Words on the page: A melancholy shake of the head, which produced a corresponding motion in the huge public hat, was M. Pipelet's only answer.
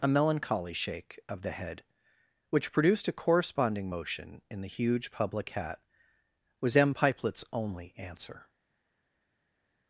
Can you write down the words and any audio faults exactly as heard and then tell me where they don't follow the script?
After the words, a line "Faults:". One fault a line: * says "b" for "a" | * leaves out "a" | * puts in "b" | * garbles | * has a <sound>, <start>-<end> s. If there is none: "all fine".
A melancholy shake of the head, which produced a corresponding motion in the huge public hat, was M. Pipelet's only answer.
Faults:
all fine